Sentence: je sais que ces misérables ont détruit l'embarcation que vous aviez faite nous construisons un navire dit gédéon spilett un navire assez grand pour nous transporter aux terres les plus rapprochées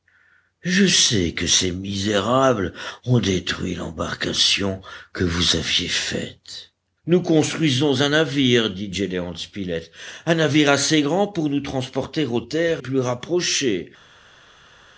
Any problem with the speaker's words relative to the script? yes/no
yes